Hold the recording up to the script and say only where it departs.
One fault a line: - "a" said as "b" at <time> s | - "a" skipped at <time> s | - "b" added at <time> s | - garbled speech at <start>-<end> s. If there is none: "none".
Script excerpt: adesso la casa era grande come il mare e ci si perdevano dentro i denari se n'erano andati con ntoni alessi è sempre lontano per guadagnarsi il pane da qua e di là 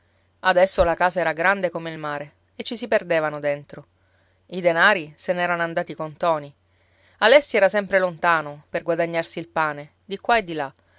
- "è" said as "era" at 7.6 s
- "da" said as "di" at 10.0 s